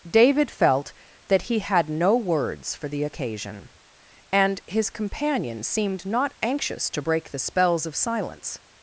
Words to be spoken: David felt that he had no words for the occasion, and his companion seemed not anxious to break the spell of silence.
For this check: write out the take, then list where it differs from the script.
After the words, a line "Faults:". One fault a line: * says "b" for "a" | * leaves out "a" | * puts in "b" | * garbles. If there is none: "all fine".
David felt that he had no words for the occasion, and his companion seemed not anxious to break the spells of silence.
Faults:
* says "spells" for "spell"